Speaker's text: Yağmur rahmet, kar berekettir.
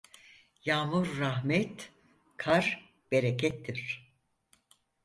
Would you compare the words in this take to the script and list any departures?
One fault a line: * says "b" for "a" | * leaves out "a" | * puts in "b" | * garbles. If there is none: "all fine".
all fine